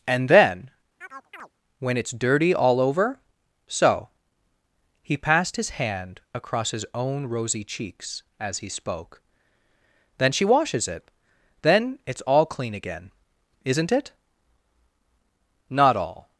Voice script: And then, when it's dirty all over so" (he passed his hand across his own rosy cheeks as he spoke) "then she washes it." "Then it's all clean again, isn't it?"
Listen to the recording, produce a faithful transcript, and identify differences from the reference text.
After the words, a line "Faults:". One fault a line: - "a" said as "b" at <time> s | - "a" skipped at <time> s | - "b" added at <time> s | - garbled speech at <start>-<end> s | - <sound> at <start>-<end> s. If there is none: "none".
And then, when it's dirty all over so" (he passed his hand across his own rosy cheeks as he spoke) "then she washes it." "Then it's all clean again, isn't it?" "Not all
Faults:
- chirp at 1.0-1.5 s
- "Not all" added at 15.7 s